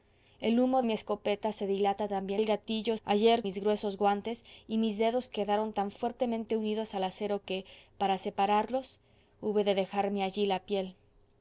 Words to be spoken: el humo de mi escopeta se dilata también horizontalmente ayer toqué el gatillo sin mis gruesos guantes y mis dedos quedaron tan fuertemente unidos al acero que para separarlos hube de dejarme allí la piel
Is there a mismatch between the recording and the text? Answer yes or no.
yes